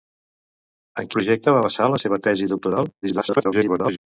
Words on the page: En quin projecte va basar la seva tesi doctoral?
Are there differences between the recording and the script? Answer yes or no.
yes